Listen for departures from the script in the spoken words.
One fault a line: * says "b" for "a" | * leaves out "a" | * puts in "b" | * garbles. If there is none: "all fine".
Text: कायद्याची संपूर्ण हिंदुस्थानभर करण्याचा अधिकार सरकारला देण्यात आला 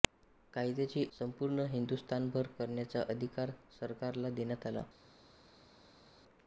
all fine